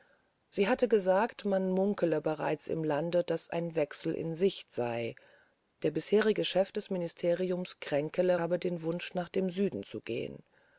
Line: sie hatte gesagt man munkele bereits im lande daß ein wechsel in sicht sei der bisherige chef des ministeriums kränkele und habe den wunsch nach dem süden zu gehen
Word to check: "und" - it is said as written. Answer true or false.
false